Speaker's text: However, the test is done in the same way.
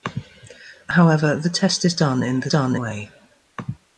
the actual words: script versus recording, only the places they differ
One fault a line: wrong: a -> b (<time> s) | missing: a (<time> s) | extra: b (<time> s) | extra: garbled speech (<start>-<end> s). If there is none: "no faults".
wrong: same -> done (2.5 s)